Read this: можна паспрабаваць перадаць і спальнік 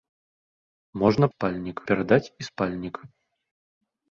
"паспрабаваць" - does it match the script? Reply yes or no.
no